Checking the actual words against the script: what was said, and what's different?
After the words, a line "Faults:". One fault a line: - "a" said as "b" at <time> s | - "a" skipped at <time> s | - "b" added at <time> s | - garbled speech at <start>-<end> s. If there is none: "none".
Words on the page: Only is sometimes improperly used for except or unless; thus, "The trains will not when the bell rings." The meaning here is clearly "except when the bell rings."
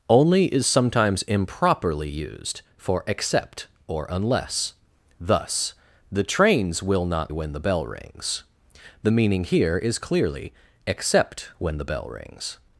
Only is sometimes improperly used for except or unless; thus, "The trains will not when the bell rings." The meaning here is clearly "except when the bell rings."
Faults:
none